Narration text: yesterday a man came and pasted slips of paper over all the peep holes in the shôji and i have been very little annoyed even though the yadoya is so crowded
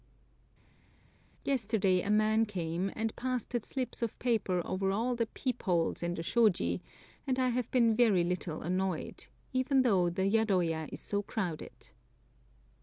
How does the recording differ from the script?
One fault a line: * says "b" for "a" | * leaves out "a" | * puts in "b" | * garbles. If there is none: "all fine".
all fine